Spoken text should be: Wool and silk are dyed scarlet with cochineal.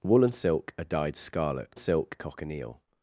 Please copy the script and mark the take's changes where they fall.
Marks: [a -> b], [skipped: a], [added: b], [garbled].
Wool and silk are dyed scarlet [with -> silk] cochineal.